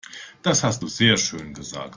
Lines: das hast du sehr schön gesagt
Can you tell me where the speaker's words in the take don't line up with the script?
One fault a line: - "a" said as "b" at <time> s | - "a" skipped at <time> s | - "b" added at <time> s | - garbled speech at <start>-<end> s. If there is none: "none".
none